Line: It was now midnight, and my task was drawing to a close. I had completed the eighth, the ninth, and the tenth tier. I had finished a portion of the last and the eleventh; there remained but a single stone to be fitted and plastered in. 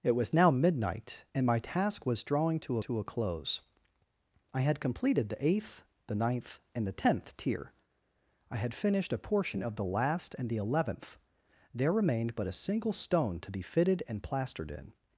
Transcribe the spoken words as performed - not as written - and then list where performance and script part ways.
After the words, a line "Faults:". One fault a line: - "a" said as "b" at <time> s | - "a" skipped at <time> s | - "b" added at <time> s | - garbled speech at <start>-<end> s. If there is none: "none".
It was now midnight, and my task was drawing to to a close. I had completed the eighth, the ninth, and the tenth tier. I had finished a portion of the last and the eleventh; there remained but a single stone to be fitted and plastered in.
Faults:
- "to" added at 2.8 s